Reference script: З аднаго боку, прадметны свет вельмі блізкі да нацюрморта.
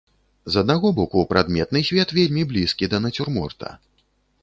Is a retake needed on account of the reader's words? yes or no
no